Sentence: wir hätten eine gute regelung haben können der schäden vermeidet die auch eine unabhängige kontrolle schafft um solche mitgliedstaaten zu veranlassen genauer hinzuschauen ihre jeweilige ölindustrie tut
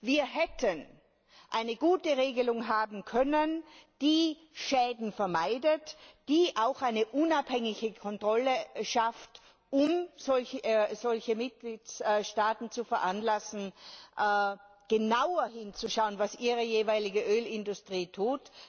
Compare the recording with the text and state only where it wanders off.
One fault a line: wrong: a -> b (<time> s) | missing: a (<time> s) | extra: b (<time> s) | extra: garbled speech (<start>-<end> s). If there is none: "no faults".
wrong: der -> die (4.0 s)
extra: was (16.2 s)